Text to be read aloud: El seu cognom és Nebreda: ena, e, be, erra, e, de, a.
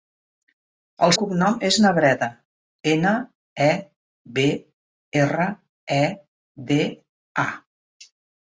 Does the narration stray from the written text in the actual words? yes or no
yes